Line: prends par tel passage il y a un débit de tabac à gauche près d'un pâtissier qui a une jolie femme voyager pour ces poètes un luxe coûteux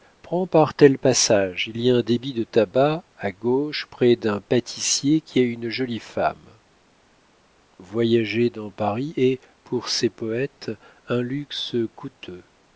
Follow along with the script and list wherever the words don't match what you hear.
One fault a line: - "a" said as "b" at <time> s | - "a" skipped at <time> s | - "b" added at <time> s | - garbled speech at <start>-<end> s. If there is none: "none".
- "dans paris est" added at 8.5 s